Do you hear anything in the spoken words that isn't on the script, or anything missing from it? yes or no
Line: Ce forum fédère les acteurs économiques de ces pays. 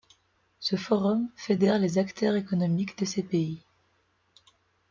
no